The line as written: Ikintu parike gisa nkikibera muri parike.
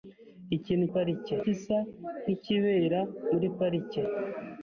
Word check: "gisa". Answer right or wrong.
right